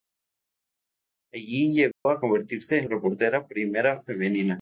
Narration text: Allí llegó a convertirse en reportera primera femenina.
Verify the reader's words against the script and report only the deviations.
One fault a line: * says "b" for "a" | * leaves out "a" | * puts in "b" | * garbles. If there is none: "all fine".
all fine